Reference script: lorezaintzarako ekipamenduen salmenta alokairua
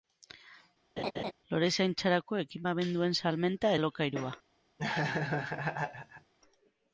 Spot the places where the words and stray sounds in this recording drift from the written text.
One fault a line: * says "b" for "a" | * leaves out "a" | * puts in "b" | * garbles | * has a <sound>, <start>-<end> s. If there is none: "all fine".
* has a laugh, 1.0-1.3 s
* has a laugh, 4.8-6.3 s